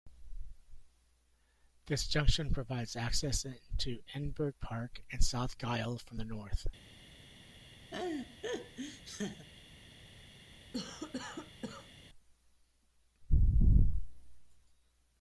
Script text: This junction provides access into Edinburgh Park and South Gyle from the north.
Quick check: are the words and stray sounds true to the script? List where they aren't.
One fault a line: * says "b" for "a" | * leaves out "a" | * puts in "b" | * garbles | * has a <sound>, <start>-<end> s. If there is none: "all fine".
* has a laugh, 7.9-9.5 s
* has a cough, 10.7-11.9 s